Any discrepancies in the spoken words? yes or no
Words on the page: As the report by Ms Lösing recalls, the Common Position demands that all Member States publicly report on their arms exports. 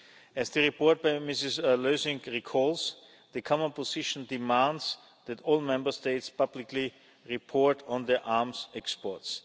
no